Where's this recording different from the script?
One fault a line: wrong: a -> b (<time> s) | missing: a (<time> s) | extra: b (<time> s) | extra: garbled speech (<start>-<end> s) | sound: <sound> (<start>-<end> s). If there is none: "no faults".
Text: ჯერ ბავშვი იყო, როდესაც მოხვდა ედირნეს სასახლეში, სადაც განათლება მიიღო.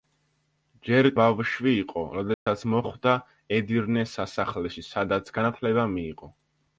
sound: dropout (2.3-2.5 s)